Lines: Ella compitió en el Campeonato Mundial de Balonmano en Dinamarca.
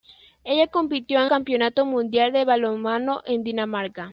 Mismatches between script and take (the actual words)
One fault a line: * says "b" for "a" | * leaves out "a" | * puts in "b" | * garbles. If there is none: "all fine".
* leaves out "el"